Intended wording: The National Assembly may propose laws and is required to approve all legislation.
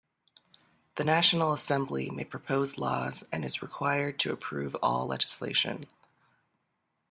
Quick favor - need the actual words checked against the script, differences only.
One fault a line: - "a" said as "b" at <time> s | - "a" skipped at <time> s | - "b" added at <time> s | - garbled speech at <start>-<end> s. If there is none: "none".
none